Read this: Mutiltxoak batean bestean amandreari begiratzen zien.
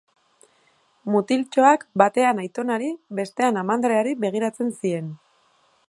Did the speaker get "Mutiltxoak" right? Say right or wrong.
right